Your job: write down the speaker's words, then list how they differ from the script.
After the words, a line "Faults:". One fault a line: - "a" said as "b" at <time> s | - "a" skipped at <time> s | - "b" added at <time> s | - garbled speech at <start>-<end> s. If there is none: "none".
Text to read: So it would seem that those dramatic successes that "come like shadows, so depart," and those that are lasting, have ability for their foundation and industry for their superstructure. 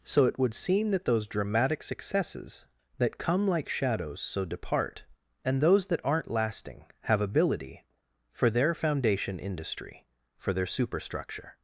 So it would seem that those dramatic successes that "come like shadows, so depart," and those that aren't lasting, have ability for their foundation industry for their superstructure.
Faults:
- "are" said as "aren't" at 6.0 s
- "and" skipped at 9.4 s